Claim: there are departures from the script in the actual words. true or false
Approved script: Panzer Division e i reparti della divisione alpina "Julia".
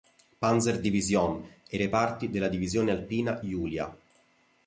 false